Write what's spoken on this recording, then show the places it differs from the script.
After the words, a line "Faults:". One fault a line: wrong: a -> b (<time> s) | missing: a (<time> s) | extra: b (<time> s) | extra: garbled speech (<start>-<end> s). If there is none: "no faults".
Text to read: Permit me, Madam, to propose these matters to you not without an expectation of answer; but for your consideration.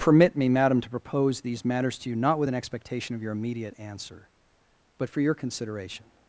Permit me, Madam, to propose these matters to you not with an expectation of your immediate answer; but for your consideration.
Faults:
wrong: without -> with (2.4 s)
extra: your immediate (3.2 s)